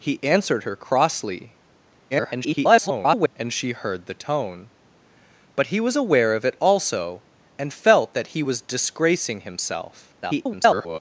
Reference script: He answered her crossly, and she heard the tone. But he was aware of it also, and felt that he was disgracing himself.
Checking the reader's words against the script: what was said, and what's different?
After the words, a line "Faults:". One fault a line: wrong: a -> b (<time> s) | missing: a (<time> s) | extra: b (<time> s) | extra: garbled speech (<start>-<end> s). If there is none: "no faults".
He answered her crossly, [garbled] and she heard the tone. But he was aware of it also, and felt that he was disgracing himself. [garbled]
Faults:
extra: garbled speech (2.1-3.3 s)
extra: garbled speech (10.2-11.0 s)